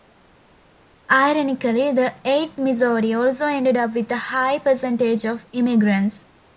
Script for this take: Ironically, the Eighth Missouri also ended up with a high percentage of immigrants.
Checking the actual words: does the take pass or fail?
pass